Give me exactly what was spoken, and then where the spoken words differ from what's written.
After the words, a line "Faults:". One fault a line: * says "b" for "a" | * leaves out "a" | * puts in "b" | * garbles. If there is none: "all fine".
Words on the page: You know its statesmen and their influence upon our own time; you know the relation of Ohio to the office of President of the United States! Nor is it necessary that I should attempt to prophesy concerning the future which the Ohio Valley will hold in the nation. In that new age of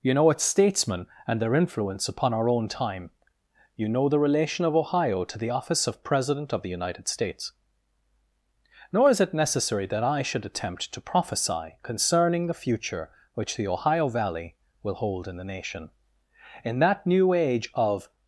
You know its statesmen and their influence upon our own time; you know the relation of Ohio to the office of President of the United States! Nor is it necessary that I should attempt to prophesy concerning the future which the Ohio Valley will hold in the nation. In that new age of
Faults:
all fine